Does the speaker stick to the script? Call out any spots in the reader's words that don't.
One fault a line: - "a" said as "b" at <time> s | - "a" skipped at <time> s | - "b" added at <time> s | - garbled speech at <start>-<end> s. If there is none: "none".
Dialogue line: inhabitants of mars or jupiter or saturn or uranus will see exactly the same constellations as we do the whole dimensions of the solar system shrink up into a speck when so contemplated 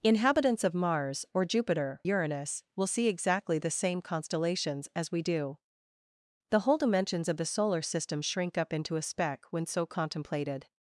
- "or saturn or" skipped at 2.0 s